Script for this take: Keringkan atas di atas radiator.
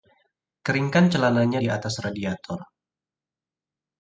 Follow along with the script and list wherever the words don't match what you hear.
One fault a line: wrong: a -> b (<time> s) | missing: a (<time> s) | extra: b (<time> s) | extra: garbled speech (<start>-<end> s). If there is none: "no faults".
wrong: atas -> celananya (1.1 s)